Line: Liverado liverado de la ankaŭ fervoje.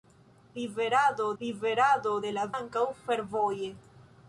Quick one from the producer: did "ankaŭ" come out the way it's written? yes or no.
yes